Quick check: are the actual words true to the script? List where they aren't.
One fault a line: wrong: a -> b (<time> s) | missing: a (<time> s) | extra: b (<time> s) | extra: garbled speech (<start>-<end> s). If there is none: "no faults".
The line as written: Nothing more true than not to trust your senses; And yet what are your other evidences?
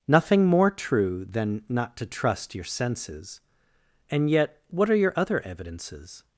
no faults